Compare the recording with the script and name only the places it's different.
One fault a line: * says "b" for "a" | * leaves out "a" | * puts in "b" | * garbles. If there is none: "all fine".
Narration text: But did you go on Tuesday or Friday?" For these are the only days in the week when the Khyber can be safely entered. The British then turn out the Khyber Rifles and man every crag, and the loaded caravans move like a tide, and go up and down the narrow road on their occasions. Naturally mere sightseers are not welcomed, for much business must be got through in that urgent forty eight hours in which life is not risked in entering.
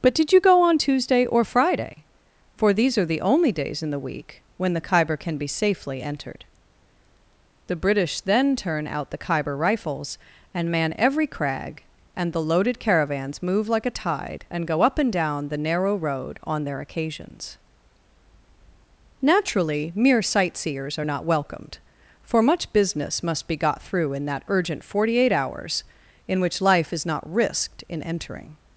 all fine